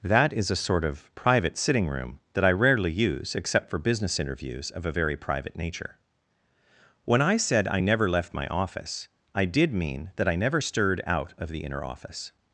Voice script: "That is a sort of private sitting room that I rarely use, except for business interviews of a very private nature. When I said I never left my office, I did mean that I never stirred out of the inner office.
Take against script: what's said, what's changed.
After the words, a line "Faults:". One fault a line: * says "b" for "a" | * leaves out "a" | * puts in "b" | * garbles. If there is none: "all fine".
"That is a sort of private sitting room that I rarely use, except for business interviews of a very private nature. When I said I never left my office, I did mean that I never stirred out of the inner office.
Faults:
all fine